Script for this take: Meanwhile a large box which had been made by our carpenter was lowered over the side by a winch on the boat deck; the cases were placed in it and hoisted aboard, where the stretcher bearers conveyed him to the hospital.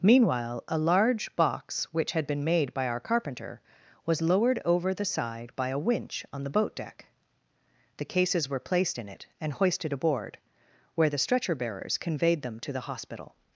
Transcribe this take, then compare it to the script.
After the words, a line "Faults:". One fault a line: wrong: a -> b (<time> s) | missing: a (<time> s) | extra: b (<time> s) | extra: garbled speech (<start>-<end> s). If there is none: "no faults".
Meanwhile a large box which had been made by our carpenter was lowered over the side by a winch on the boat deck; the cases were placed in it and hoisted aboard, where the stretcher bearers conveyed them to the hospital.
Faults:
wrong: him -> them (12.4 s)